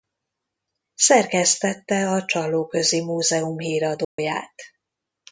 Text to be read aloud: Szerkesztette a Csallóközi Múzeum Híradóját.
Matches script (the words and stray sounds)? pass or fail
fail